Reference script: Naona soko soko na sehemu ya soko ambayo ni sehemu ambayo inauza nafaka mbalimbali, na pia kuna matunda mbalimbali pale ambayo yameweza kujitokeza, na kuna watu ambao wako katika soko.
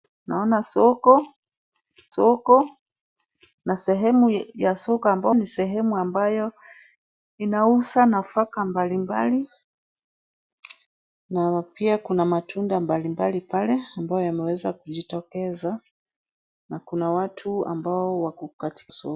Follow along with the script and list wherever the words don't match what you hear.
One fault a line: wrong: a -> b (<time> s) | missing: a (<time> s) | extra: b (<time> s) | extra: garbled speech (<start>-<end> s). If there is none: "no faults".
no faults